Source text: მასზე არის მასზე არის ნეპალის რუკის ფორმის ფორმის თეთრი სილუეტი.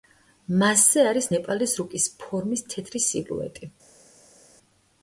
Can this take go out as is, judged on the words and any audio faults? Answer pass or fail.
fail